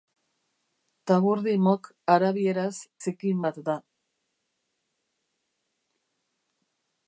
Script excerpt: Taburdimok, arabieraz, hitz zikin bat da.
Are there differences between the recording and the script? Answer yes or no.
yes